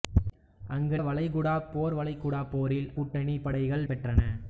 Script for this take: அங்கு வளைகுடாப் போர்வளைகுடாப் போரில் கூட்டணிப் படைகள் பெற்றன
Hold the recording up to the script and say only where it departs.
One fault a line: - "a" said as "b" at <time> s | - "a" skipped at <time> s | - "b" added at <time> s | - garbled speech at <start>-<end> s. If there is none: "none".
none